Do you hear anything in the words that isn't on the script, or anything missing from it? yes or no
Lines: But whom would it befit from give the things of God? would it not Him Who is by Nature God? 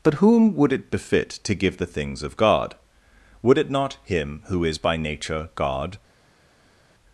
yes